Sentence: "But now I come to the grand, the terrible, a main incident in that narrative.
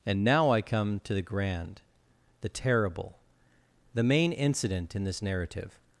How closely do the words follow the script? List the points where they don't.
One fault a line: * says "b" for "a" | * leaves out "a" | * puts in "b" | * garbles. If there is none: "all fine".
* says "And" for "But"
* says "the" for "a"
* says "this" for "that"